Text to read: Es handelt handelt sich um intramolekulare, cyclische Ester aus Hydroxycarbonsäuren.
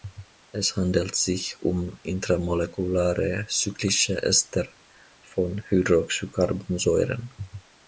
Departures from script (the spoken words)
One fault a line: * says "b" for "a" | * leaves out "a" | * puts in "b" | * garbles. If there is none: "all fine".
* leaves out "handelt"
* says "von" for "aus"